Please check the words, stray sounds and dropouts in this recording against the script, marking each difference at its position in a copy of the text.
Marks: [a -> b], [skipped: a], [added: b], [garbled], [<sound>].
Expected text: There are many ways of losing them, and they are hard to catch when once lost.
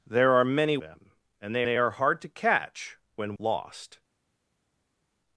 There are many [skipped: ways of losing] them, and they [added: they] are hard to catch when [skipped: once] lost.